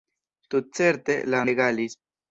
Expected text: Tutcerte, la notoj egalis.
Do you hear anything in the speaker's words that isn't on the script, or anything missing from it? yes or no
yes